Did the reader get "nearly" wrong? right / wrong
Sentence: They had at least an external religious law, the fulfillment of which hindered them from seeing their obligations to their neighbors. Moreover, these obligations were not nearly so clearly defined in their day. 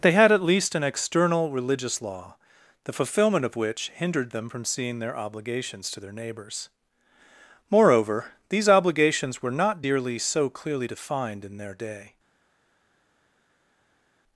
wrong